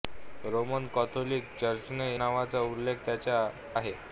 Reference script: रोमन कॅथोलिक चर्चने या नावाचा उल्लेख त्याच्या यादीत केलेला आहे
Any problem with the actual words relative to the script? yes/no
yes